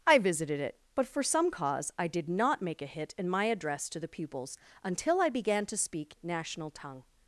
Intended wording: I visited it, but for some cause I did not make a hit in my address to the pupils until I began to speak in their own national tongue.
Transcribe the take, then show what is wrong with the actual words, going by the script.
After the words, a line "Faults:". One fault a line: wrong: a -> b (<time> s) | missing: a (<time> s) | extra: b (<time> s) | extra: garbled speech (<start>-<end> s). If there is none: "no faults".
I visited it, but for some cause I did not make a hit in my address to the pupils until I began to speak national tongue.
Faults:
missing: in their own (6.2 s)